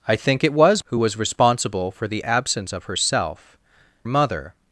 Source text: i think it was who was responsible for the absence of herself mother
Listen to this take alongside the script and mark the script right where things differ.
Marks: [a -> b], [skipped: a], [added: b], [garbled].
i think it was who was responsible for the absence of herself mother